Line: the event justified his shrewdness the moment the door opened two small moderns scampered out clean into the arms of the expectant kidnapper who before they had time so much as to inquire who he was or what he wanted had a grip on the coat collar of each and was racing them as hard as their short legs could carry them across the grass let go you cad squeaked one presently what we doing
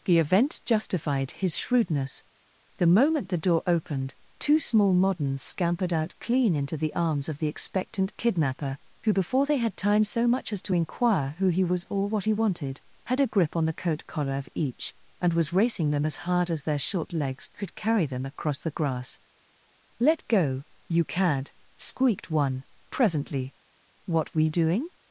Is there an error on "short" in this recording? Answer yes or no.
no